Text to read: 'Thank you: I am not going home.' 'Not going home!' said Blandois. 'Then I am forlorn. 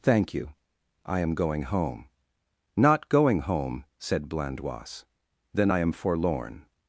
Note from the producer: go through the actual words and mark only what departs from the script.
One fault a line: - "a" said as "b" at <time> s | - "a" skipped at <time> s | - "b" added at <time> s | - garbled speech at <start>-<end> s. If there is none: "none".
- "not" skipped at 1.4 s